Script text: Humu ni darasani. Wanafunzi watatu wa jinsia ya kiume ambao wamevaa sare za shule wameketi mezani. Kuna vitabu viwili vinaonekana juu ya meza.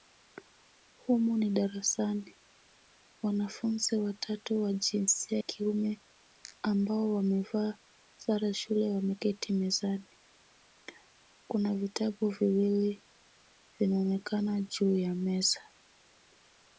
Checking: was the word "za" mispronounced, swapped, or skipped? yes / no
yes